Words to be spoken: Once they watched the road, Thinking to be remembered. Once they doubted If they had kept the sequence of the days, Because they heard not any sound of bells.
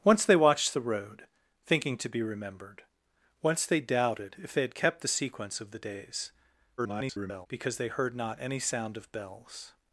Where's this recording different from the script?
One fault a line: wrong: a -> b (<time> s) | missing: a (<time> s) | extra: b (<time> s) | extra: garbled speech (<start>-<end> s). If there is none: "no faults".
extra: garbled speech (6.8-7.5 s)